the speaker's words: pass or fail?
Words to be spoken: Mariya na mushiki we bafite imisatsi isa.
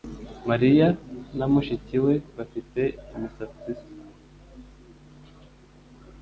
pass